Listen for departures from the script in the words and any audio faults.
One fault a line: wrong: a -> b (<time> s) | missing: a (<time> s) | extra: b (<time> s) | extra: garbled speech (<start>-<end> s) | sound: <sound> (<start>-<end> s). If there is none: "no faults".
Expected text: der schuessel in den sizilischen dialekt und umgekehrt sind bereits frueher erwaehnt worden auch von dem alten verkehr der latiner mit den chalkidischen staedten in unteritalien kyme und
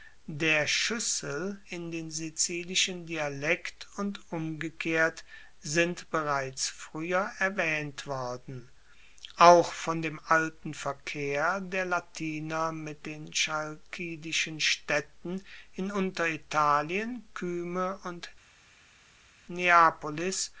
no faults